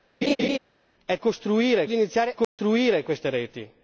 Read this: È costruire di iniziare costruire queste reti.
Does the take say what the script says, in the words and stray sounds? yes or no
no